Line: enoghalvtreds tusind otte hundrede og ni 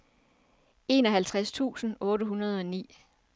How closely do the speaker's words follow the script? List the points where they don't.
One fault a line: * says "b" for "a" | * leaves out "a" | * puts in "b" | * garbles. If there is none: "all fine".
all fine